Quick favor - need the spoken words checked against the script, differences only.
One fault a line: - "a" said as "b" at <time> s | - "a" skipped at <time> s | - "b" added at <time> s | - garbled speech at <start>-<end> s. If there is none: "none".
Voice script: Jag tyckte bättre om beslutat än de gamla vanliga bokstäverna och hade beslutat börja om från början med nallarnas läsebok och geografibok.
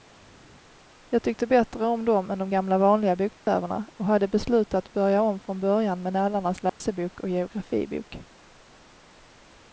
- "beslutat" said as "dem" at 2.0 s